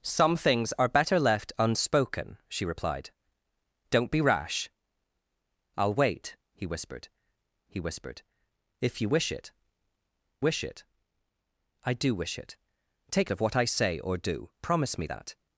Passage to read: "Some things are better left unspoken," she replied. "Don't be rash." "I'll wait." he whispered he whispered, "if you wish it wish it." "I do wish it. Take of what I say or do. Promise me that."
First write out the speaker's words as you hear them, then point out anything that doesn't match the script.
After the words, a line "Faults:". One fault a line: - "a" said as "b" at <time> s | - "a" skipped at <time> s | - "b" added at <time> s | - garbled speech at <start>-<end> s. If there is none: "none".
"Some things are better left unspoken," she replied. "Don't be rash." "I'll wait." he whispered he whispered, "if you wish it wish it." "I do wish it. Take of what I say or do. Promise me that."
Faults:
none